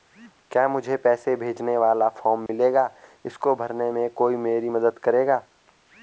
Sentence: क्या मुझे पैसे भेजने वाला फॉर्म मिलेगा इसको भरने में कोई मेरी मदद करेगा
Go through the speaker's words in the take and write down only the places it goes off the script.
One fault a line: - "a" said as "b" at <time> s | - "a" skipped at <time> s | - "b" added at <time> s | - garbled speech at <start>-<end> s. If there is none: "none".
none